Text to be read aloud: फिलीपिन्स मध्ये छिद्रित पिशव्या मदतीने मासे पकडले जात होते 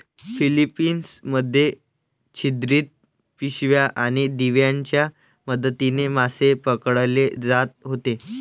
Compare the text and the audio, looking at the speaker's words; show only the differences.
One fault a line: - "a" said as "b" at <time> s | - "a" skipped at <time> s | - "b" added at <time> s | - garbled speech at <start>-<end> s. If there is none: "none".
- "आणि दिव्यांच्या" added at 4.0 s